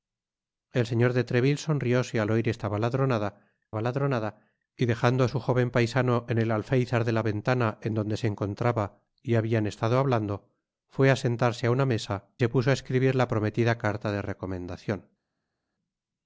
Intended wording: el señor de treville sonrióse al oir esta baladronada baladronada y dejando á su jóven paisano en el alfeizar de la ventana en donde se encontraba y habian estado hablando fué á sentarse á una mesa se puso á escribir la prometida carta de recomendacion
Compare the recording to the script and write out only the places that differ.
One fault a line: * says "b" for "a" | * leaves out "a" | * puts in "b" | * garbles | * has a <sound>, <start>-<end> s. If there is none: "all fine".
all fine